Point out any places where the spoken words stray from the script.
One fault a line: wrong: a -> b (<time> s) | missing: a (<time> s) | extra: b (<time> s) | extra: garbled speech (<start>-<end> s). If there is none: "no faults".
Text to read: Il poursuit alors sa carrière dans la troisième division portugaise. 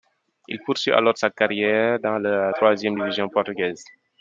no faults